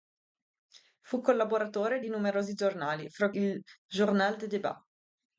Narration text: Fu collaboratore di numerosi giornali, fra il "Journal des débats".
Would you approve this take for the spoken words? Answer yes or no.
yes